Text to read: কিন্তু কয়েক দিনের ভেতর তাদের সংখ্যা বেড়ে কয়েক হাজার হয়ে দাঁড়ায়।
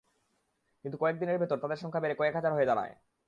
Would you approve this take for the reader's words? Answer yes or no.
yes